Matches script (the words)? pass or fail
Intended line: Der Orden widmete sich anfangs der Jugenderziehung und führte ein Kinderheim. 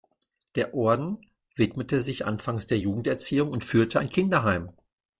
pass